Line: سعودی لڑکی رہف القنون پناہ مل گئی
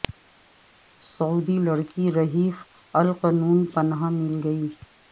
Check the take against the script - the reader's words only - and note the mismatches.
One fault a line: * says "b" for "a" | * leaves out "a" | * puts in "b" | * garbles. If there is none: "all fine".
all fine